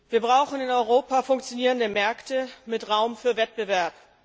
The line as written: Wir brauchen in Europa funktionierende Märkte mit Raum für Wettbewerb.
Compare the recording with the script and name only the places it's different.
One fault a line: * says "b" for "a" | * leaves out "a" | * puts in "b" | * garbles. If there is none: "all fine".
all fine